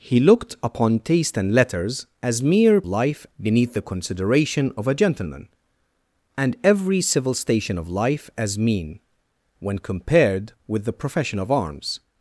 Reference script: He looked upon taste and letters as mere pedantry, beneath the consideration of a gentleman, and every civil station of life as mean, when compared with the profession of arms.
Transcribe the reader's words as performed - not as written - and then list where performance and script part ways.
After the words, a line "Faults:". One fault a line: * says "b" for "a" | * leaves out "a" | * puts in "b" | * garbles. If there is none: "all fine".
He looked upon taste and letters as mere life, beneath the consideration of a gentleman, and every civil station of life as mean, when compared with the profession of arms.
Faults:
* says "life" for "pedantry"